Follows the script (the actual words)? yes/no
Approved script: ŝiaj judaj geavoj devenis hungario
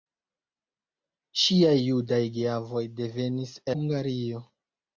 yes